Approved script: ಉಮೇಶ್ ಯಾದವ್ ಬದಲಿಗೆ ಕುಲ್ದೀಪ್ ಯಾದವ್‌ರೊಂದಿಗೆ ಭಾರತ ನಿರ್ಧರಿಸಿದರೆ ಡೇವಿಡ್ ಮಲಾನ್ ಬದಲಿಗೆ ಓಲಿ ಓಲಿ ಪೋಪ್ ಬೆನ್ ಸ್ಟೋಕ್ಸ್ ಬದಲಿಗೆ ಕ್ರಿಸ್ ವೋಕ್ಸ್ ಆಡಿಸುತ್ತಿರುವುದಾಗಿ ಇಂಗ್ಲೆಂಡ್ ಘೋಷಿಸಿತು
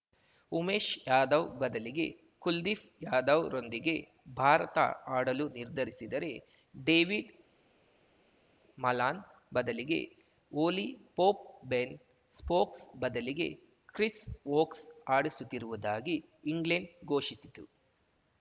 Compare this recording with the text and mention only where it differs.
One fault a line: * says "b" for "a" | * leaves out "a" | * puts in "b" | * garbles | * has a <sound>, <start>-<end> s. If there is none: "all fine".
* puts in "ಆಡಲು"
* leaves out "ಓಲಿ"